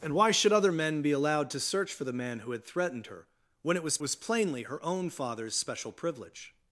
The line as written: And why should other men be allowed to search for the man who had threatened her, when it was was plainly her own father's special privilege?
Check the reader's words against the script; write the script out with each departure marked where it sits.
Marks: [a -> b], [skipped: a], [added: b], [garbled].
And why should other men be allowed to search for the man who had threatened her, when it was was plainly her own father's special privilege?